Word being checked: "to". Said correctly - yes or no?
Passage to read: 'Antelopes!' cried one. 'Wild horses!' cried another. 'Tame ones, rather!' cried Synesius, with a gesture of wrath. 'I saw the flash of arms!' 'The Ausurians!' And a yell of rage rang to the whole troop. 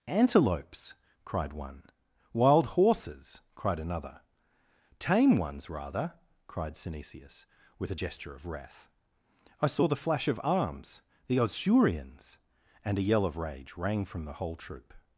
no